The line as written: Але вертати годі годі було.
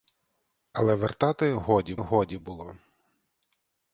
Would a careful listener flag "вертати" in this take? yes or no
no